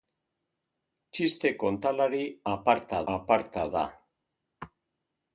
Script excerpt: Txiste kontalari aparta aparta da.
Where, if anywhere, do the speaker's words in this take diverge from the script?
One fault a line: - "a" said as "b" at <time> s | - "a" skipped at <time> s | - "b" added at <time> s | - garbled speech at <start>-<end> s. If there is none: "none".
none